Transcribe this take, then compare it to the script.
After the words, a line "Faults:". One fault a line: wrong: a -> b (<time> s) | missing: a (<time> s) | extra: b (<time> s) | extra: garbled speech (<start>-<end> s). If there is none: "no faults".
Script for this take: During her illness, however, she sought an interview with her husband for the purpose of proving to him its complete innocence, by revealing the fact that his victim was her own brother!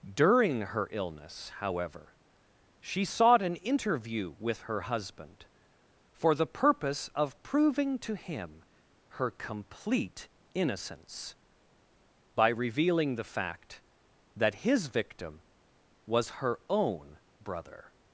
During her illness, however, she sought an interview with her husband for the purpose of proving to him her complete innocence, by revealing the fact that his victim was her own brother!
Faults:
wrong: its -> her (9.1 s)